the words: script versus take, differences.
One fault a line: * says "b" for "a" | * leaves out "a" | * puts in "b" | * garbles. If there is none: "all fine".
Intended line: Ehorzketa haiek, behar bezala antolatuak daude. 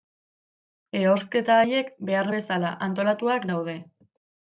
all fine